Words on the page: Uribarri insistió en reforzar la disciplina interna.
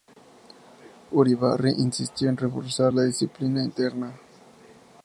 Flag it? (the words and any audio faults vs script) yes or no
no